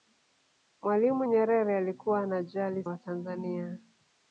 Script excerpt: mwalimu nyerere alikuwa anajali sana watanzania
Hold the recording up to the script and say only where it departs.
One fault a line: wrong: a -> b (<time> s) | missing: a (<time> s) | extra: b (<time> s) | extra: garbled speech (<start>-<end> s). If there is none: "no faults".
missing: sana (2.8 s)